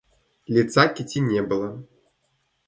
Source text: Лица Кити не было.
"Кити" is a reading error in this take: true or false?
false